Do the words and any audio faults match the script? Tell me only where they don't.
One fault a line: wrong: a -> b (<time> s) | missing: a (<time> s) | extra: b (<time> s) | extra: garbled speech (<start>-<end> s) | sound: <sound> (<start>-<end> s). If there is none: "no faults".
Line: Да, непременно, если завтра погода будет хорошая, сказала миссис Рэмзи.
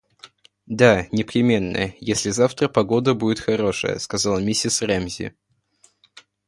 no faults